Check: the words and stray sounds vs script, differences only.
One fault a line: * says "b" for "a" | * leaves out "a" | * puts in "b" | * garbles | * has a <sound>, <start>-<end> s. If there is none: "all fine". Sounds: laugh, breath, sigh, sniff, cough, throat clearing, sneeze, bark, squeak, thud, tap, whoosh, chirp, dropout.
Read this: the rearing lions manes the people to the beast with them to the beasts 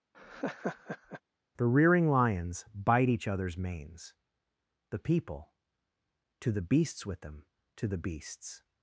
* has a laugh, 0.1-1.2 s
* puts in "bite each other's"
* says "beasts" for "beast"